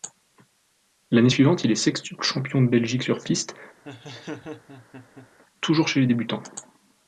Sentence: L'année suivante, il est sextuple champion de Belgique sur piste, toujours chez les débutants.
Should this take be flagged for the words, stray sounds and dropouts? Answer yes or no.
yes